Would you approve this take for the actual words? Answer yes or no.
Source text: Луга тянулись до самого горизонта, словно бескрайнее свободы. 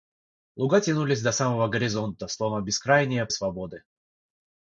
yes